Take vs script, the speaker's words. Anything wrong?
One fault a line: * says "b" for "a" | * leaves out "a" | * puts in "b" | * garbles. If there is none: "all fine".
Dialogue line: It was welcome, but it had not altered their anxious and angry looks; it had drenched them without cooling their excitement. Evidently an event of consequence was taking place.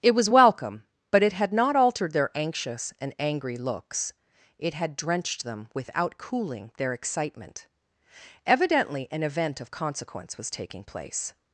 all fine